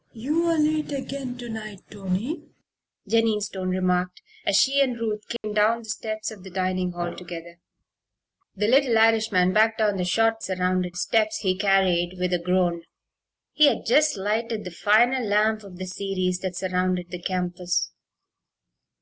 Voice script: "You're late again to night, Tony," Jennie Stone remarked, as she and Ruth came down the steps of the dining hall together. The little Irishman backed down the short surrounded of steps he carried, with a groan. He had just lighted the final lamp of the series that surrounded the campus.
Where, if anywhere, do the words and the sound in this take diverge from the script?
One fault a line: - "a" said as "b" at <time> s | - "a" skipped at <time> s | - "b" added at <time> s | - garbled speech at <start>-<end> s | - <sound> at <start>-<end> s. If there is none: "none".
- dropout at 5.4-5.4 s